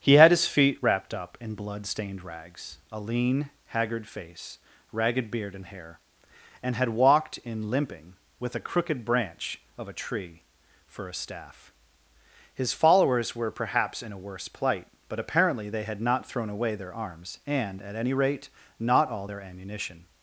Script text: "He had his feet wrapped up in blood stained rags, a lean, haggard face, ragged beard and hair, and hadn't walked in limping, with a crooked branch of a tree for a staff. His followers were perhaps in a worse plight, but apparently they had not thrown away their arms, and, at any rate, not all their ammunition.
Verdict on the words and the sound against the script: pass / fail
fail